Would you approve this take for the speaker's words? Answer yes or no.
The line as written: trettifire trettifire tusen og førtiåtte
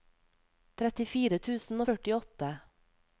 no